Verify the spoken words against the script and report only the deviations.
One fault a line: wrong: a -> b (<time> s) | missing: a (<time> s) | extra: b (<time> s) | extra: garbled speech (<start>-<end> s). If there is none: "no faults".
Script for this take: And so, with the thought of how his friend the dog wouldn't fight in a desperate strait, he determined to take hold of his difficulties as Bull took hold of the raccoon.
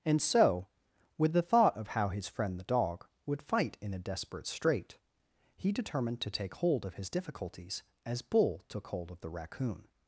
wrong: wouldn't -> would (3.2 s)